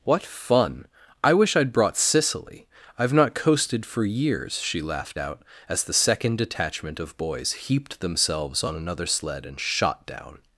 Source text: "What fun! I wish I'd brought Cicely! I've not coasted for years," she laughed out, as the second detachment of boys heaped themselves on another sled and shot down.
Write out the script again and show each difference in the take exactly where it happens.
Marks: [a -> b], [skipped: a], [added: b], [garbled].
"What fun! I wish I'd brought Cicely! I've not coasted for years," she laughed out, as the second detachment of boys heaped themselves on another sled and shot down.